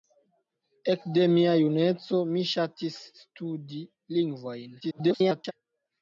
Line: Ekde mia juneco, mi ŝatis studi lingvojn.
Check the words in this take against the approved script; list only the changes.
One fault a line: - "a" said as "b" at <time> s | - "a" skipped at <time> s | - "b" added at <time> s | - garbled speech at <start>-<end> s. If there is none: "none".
- garbled speech at 4.8-5.5 s